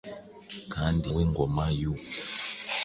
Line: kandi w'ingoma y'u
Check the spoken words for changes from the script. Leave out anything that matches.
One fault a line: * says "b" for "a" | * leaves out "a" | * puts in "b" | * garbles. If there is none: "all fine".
all fine